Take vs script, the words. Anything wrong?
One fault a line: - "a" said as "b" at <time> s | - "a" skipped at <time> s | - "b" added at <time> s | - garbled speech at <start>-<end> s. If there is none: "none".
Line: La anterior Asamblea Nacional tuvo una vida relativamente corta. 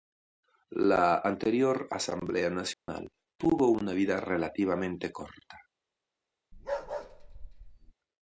none